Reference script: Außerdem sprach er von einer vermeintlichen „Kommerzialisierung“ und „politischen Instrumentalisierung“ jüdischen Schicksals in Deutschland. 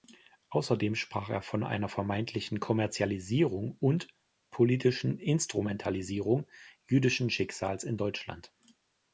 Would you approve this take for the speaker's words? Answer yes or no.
yes